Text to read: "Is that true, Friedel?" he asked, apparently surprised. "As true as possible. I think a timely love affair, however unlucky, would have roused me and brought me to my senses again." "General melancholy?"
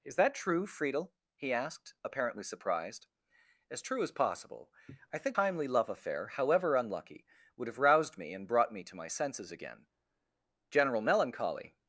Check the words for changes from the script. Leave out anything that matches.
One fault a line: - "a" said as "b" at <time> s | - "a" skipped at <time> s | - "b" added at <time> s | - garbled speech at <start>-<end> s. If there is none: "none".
- "a" skipped at 5.4 s